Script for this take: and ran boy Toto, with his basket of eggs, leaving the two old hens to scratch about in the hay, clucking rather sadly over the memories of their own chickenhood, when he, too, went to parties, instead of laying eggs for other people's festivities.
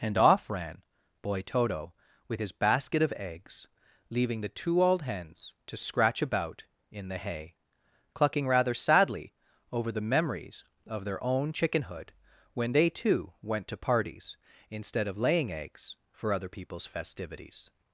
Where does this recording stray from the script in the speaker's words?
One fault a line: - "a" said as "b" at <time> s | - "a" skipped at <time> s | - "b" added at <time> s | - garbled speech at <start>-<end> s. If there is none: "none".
- "off" added at 0.2 s
- "he" said as "they" at 12.7 s